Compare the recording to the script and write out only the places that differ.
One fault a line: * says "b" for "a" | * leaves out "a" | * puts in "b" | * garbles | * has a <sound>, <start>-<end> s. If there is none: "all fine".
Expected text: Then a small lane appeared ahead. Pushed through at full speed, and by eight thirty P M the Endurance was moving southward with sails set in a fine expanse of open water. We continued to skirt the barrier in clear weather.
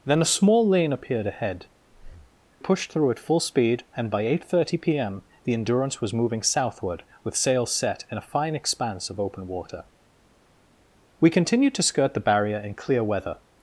* has a breath, 1.9-2.4 s